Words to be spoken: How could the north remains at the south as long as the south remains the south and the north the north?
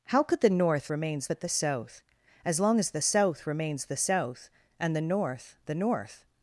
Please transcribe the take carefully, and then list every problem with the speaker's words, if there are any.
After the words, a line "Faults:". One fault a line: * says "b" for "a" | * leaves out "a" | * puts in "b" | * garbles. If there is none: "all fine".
How could the north remains at the south as long as the south remains the south and the north the north?
Faults:
all fine